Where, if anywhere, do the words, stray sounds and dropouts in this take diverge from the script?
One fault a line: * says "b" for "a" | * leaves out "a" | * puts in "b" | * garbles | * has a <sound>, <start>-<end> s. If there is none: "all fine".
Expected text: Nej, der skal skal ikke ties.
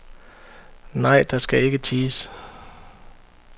* leaves out "skal"